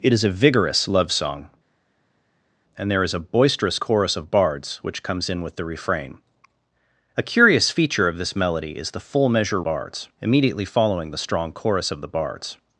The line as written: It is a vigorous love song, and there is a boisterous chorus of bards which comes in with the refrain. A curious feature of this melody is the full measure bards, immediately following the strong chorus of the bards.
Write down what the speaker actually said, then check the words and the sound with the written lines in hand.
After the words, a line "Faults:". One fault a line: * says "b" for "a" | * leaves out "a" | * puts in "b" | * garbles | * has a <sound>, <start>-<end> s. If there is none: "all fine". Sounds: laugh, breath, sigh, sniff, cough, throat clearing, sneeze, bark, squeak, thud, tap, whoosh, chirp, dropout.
It is a vigorous love song, and there is a boisterous chorus of bards which comes in with the refrain. A curious feature of this melody is the full measure bards, immediately following the strong chorus of the bards.
Faults:
all fine